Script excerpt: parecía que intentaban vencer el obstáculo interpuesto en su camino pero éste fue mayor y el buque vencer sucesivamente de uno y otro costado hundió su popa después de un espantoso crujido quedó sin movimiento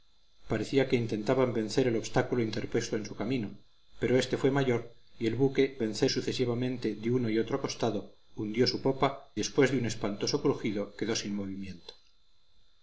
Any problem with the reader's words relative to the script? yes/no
no